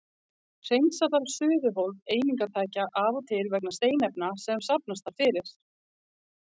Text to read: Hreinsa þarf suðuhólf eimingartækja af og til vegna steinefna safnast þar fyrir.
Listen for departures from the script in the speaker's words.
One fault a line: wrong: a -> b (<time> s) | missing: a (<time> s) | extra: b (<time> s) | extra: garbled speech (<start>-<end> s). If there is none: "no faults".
extra: sem (4.5 s)